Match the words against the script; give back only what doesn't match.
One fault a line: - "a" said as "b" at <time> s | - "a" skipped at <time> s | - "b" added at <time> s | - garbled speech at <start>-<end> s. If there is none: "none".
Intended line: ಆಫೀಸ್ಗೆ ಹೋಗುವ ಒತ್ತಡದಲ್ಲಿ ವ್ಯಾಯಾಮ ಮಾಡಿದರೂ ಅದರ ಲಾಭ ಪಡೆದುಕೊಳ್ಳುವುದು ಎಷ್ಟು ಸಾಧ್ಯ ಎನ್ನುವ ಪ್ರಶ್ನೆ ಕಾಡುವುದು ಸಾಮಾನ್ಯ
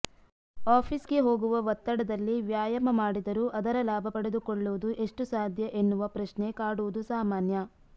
none